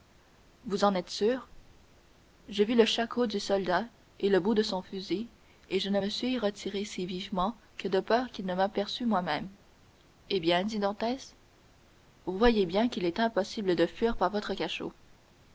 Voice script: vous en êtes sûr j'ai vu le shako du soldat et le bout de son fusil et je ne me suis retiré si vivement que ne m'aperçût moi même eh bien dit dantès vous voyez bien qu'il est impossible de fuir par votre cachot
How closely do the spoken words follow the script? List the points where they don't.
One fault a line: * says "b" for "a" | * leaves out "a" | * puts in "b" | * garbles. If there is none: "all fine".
* puts in "de peur qu'il"